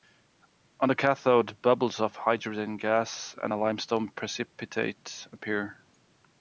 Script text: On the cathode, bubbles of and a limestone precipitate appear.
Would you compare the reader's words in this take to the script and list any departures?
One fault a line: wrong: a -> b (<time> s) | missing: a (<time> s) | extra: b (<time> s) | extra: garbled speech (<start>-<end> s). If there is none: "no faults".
extra: hydrogen gas (2.1 s)